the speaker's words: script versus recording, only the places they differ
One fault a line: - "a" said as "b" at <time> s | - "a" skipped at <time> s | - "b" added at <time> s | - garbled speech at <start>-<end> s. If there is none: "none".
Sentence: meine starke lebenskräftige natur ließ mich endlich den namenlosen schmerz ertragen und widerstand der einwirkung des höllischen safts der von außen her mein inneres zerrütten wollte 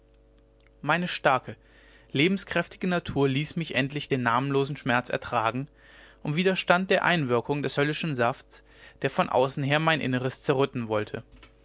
none